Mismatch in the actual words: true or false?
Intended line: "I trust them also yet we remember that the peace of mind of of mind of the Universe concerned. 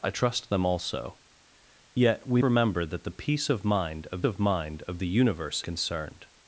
false